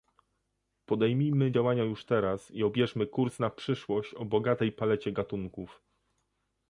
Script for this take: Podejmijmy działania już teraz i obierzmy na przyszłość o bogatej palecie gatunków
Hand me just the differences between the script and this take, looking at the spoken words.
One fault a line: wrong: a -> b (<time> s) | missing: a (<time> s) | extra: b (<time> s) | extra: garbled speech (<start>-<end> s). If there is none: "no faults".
extra: kurs (3.1 s)